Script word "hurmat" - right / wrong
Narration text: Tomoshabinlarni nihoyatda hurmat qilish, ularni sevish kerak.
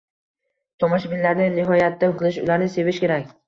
wrong